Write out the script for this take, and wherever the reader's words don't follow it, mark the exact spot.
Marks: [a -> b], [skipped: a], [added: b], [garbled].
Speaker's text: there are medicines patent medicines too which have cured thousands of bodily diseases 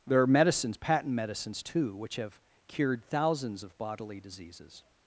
there are medicines patent medicines too which have cured thousands of bodily diseases